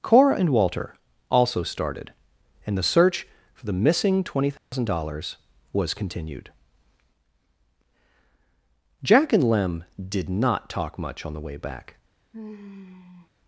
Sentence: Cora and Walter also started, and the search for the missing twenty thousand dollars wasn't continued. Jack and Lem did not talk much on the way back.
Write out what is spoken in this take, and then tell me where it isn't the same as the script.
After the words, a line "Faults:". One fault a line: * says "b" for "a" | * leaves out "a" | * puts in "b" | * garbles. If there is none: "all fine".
Cora and Walter also started, and the search for the missing twenty thousand dollars was continued. Jack and Lem did not talk much on the way back.
Faults:
* says "was" for "wasn't"